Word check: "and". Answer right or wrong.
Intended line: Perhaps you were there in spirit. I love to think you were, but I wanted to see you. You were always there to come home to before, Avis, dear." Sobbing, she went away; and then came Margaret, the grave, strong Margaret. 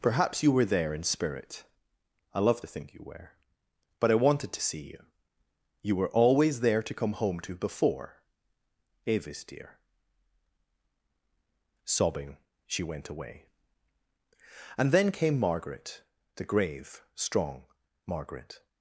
right